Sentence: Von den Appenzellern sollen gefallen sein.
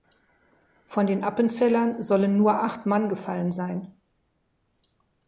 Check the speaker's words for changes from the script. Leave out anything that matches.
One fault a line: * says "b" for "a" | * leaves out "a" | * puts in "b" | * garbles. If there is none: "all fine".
* puts in "nur acht Mann"